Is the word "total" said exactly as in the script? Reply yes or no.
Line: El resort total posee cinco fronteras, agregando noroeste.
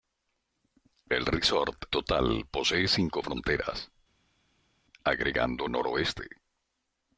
yes